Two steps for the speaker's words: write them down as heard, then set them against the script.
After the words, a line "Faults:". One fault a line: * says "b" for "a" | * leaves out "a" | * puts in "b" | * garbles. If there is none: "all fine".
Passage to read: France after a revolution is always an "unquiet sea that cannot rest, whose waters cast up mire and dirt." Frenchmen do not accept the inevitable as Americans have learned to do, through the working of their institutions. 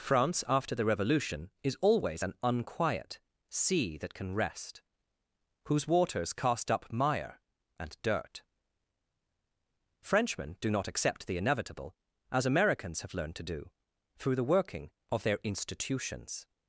France after the revolution is always an "unquiet sea that can rest, whose waters cast up mire and dirt." Frenchmen do not accept the inevitable as Americans have learned to do, through the working of their institutions.
Faults:
* says "the" for "a"
* says "can" for "cannot"